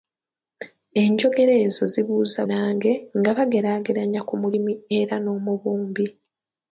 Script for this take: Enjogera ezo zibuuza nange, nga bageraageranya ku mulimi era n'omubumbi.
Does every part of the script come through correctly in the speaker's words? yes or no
yes